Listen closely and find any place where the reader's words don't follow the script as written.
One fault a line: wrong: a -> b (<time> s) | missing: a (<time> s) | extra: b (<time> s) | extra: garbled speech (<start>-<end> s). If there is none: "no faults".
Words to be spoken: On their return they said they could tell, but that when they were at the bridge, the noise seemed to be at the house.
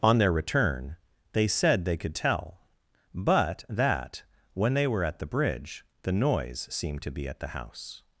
no faults